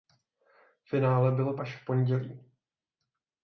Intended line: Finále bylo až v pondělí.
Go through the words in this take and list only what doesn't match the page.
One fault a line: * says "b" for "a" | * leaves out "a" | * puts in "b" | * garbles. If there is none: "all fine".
all fine